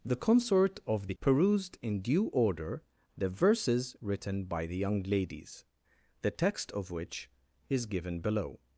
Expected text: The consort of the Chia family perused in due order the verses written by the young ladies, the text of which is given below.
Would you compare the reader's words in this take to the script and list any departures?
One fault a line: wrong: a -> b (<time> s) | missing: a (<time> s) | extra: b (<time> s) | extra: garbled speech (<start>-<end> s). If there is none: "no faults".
missing: Chia family (1.1 s)